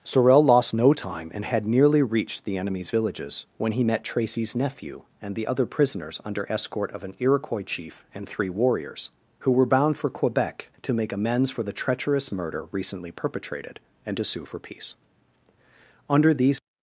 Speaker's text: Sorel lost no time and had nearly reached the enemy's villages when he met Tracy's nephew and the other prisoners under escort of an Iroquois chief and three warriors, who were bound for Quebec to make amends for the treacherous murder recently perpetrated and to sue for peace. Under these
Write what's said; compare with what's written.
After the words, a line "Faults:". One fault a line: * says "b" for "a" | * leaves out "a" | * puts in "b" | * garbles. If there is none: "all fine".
Sorel lost no time and had nearly reached the enemy's villages when he met Tracy's nephew and the other prisoners under escort of an Iroquois chief and three warriors, who were bound for Quebec to make amends for the treacherous murder recently perpetrated and to sue for peace. Under these
Faults:
all fine